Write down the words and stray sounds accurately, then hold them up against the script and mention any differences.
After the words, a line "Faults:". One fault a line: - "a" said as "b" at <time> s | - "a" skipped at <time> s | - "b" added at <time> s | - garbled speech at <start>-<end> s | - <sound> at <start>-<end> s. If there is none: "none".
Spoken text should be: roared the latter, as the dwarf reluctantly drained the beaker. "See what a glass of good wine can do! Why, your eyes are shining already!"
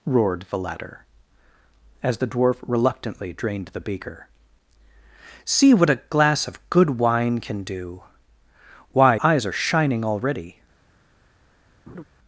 roared the latter, as the dwarf reluctantly drained the beaker. "See what a glass of good wine can do! Why, eyes are shining already!"
Faults:
- "your" skipped at 9.2 s
- laugh at 11.9-12.0 s